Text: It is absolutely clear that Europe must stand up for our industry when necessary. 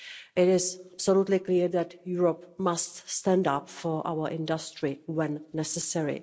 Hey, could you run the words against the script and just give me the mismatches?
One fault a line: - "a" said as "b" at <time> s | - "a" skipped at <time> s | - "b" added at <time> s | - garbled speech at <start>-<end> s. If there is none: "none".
none